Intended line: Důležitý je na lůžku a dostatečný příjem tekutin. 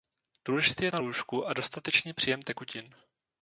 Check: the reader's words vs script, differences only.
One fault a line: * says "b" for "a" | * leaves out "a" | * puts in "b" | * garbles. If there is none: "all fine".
all fine